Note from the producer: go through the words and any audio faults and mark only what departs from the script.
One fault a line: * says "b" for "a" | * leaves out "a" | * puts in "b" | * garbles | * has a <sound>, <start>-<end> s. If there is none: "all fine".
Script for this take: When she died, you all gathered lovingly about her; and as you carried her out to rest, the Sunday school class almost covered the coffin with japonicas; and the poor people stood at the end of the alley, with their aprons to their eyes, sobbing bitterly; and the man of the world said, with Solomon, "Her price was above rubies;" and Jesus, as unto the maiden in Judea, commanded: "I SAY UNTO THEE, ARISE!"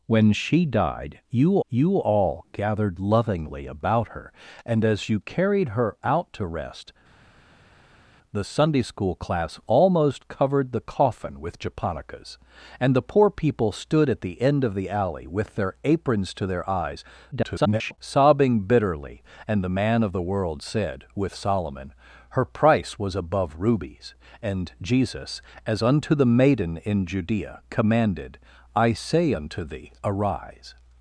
* puts in "you"
* garbles